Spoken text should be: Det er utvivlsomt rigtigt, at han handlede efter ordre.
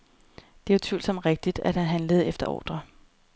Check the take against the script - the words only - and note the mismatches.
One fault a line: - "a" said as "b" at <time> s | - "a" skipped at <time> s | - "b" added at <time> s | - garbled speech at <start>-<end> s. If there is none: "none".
none